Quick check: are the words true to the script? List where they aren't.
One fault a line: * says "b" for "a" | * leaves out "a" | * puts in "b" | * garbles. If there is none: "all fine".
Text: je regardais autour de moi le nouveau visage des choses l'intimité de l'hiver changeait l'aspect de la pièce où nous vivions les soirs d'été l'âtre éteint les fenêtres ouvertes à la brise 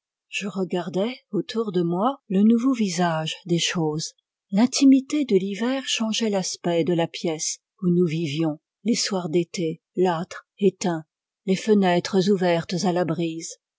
all fine